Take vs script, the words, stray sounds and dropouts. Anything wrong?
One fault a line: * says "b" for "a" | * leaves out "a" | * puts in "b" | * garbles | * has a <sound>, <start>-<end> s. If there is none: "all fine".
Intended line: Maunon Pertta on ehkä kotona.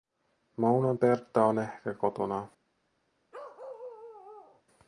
* has a bark, 3.3-4.6 s